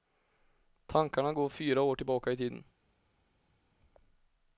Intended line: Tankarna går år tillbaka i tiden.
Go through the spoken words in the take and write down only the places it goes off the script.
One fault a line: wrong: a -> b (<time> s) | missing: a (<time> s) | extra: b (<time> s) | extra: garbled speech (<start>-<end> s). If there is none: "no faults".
extra: fyra (1.5 s)